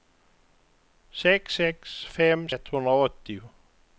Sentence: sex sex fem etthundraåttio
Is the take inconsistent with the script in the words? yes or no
no